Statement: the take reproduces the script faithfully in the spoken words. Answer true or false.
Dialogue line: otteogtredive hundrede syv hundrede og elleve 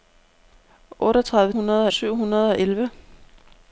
true